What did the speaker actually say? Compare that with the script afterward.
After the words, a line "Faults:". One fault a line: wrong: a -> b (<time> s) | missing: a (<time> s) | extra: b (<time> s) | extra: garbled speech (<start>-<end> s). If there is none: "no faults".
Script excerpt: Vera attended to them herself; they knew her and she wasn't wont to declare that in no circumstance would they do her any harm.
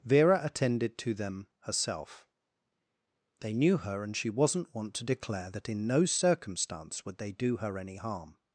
Vera attended to them herself; they knew her and she wasn't wont to declare that in no circumstance would they do her any harm.
Faults:
no faults